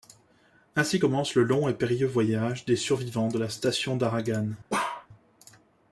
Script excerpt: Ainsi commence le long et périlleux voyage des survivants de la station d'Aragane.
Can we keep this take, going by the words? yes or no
yes